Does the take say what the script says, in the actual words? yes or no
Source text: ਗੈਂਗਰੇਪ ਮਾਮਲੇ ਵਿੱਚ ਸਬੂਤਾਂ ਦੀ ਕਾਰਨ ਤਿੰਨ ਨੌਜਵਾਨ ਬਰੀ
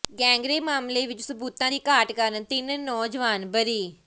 no